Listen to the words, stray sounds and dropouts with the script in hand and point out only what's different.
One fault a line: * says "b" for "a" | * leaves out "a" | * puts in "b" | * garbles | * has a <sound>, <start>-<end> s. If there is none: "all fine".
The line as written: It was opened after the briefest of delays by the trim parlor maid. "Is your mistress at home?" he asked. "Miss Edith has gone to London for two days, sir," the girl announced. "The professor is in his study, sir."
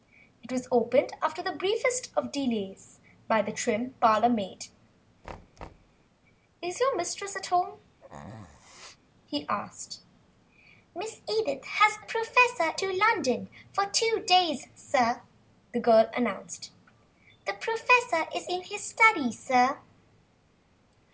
* has a thud, 5.2-6.0 s
* has a sneeze, 8.0-9.0 s
* says "professor" for "gone"